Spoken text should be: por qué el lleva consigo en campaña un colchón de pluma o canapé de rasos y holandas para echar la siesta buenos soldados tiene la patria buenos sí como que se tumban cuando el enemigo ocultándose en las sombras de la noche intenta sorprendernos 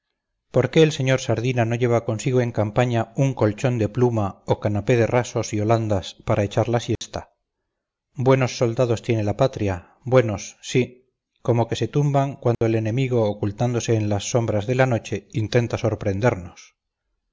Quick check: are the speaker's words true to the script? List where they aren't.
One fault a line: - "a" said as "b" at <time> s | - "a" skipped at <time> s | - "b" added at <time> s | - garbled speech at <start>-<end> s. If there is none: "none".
- "sr sardina no" added at 0.9 s